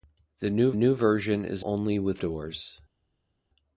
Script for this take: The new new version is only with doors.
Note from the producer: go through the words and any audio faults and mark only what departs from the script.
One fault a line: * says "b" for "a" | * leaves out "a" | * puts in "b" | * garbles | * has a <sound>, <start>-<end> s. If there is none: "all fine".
all fine